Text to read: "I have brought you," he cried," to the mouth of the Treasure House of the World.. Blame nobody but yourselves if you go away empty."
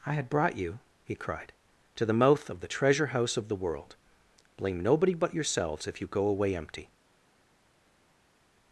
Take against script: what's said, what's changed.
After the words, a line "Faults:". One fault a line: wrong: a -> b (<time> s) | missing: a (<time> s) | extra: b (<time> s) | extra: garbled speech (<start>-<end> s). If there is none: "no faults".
"I had brought you," he cried," to the mouth of the Treasure House of the World.. Blame nobody but yourselves if you go away empty."
Faults:
wrong: have -> had (0.1 s)